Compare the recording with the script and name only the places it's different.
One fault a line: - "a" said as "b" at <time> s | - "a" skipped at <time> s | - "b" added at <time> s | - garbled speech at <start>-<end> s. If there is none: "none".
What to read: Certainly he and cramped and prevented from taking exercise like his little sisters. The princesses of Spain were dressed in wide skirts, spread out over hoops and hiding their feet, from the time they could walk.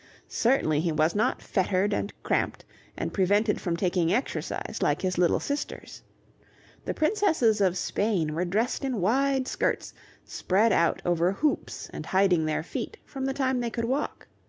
- "was not fettered" added at 0.9 s